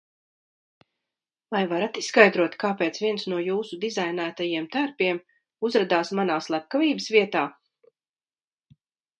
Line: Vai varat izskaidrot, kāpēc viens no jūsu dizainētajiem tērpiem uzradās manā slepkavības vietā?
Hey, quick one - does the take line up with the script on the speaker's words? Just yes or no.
yes